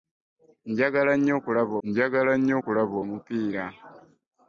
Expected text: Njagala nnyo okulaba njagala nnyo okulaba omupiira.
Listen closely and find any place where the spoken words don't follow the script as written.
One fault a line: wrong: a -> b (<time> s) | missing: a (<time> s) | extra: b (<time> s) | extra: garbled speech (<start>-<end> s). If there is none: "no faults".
no faults